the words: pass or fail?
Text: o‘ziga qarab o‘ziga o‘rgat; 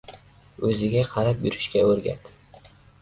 fail